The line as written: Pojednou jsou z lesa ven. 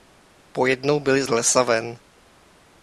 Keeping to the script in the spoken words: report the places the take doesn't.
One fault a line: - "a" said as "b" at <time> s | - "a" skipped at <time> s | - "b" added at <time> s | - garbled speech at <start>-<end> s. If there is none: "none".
- "jsou" said as "byli" at 1.0 s